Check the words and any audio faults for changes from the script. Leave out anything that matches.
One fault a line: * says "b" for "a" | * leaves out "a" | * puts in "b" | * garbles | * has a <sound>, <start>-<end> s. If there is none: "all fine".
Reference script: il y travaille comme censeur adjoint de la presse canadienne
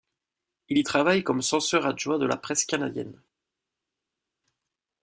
all fine